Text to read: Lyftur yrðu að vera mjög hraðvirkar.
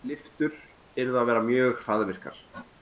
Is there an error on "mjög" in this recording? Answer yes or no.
no